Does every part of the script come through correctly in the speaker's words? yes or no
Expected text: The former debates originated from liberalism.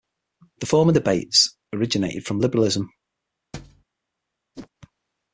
yes